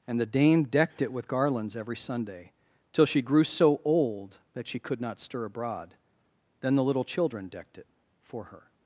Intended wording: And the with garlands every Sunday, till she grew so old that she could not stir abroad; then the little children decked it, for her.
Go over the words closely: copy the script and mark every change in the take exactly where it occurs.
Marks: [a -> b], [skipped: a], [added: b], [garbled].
And the [added: dame decked it] with garlands every Sunday, till she grew so old that she could not stir abroad; then the little children decked it, for her.